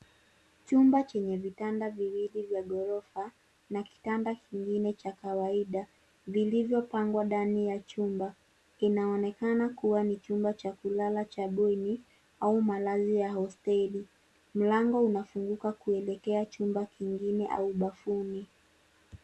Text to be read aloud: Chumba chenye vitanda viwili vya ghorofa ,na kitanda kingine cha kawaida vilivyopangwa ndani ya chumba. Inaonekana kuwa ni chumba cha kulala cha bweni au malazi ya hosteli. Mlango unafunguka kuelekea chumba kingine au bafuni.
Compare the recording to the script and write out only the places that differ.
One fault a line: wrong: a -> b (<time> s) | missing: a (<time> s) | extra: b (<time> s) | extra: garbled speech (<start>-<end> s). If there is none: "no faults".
no faults